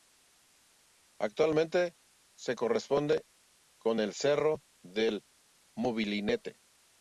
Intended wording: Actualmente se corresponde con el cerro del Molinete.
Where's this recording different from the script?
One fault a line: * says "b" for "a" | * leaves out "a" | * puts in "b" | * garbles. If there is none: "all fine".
all fine